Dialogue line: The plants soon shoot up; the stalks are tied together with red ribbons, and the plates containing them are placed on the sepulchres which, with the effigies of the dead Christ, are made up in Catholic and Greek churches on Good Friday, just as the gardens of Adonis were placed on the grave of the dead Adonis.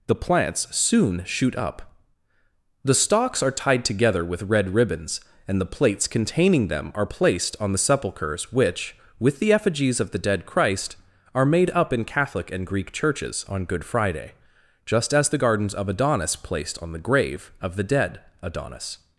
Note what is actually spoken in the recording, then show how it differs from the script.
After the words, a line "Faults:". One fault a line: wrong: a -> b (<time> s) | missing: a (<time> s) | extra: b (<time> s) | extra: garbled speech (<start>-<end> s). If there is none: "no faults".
The plants soon shoot up; the stalks are tied together with red ribbons, and the plates containing them are placed on the sepulchres which, with the effigies of the dead Christ, are made up in Catholic and Greek churches on Good Friday, just as the gardens of Adonis placed on the grave of the dead Adonis.
Faults:
missing: were (16.3 s)